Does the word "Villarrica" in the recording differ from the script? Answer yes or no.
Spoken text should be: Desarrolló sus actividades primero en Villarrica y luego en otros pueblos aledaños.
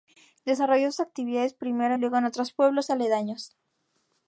yes